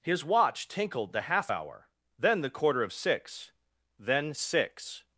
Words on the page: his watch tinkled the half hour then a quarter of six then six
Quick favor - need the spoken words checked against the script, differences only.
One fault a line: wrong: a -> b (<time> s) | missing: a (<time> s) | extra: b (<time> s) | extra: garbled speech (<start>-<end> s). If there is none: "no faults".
wrong: a -> the (2.4 s)